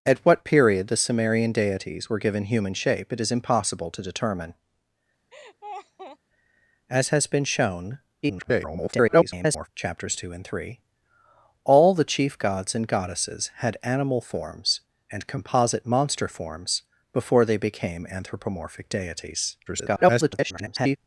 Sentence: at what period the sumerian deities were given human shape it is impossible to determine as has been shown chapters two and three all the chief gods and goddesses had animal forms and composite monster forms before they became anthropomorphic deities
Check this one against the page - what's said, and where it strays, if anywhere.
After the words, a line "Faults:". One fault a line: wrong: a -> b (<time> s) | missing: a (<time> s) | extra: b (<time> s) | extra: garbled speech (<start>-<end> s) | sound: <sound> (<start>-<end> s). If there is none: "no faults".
at what period the sumerian deities were given human shape it is impossible to determine as has been shown [garbled] chapters two and three all the chief gods and goddesses had animal forms and composite monster forms before they became anthropomorphic deities [garbled]
Faults:
sound: laugh (5.3-6.2 s)
extra: garbled speech (8.2-9.7 s)
extra: garbled speech (19.7-21.0 s)